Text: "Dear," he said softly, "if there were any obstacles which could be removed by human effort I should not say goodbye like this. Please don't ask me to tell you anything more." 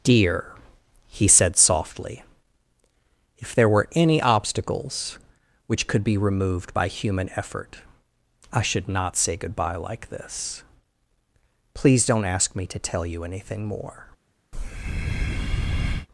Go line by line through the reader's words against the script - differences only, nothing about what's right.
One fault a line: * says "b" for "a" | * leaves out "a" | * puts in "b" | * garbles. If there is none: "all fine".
all fine